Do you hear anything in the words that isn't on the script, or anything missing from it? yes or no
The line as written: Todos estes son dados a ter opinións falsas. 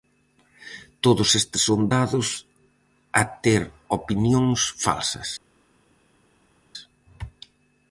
no